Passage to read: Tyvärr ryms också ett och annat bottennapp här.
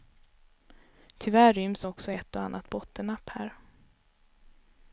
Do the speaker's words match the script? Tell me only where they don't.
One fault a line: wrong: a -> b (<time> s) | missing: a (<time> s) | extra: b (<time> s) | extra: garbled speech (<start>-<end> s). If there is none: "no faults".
no faults